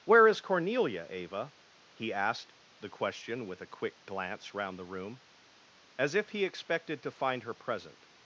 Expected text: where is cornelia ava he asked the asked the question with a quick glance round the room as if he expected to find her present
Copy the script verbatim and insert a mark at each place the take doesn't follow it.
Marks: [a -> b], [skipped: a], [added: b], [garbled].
where is cornelia ava he asked the [skipped: asked the] question with a quick glance round the room as if he expected to find her present